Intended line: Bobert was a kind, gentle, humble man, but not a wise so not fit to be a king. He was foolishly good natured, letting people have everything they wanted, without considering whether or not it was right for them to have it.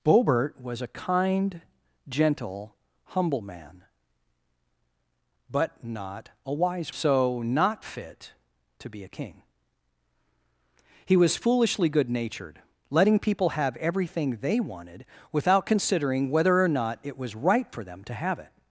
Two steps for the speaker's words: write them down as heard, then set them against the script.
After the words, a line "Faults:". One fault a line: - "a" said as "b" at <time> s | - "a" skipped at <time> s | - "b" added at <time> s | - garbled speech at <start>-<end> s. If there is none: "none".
Bobert was a kind, gentle, humble man, but not a wise so not fit to be a king. He was foolishly good natured, letting people have everything they wanted, without considering whether or not it was right for them to have it.
Faults:
none